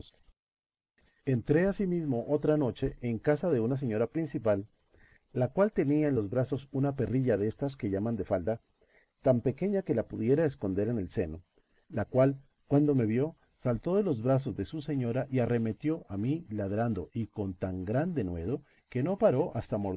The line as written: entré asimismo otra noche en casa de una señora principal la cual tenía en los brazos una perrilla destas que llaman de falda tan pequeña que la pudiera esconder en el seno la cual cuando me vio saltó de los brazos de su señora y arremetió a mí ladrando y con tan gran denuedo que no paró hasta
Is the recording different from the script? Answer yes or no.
no